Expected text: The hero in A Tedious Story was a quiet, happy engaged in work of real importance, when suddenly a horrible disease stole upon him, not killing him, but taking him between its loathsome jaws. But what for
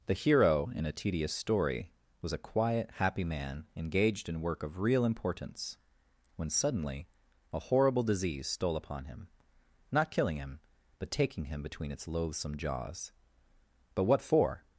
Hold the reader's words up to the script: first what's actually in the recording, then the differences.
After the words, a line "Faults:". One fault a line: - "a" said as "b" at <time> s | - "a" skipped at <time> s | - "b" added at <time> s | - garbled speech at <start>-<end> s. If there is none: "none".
The hero in A Tedious Story was a quiet, happy man engaged in work of real importance, when suddenly a horrible disease stole upon him, not killing him, but taking him between its loathsome jaws. But what for
Faults:
- "man" added at 3.2 s